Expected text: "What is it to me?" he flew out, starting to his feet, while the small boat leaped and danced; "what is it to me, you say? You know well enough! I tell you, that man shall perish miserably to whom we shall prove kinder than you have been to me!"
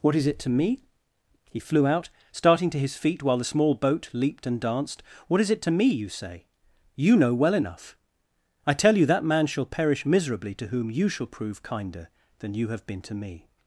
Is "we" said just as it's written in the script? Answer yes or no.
no